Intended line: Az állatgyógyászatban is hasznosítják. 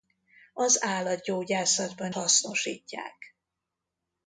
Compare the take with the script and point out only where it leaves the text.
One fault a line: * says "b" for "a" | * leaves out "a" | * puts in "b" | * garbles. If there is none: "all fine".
* leaves out "is"